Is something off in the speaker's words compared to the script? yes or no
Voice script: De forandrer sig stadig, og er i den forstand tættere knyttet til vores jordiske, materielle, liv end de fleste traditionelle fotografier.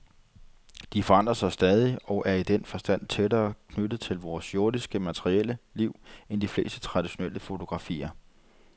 no